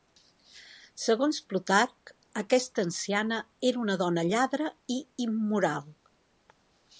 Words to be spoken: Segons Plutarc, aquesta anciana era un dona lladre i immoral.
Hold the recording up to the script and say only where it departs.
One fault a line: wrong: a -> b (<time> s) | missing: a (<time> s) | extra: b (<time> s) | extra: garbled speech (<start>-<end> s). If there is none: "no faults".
wrong: un -> una (3.8 s)